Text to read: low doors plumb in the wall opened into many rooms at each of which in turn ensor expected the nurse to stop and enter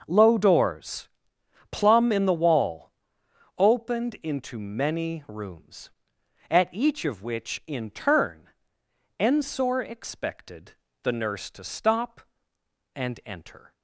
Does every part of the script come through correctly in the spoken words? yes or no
yes